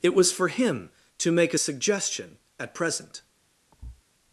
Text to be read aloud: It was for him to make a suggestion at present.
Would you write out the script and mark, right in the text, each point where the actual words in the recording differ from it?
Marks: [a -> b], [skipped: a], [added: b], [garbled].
It was for him to make a suggestion at present.